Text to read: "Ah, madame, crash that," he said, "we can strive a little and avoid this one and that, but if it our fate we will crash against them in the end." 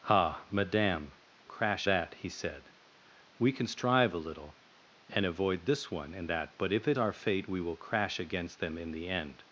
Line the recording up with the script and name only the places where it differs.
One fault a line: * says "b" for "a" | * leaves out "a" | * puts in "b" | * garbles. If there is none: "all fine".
all fine